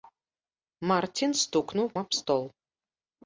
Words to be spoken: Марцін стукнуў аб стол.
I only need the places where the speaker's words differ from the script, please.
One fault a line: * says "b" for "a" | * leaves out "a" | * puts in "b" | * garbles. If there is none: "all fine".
all fine